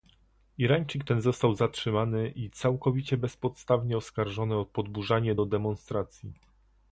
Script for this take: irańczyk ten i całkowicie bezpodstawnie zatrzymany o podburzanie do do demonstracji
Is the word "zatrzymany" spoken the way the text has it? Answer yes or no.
no